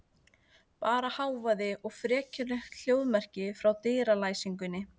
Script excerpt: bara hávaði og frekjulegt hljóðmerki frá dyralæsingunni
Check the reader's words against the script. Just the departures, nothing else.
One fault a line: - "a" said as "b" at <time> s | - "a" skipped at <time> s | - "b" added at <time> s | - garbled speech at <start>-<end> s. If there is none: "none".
none